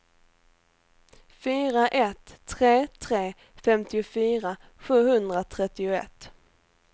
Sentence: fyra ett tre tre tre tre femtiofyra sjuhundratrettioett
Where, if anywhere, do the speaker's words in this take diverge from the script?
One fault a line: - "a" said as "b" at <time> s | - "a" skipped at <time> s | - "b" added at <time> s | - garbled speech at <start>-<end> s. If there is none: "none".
- "tre tre" skipped at 3.3 s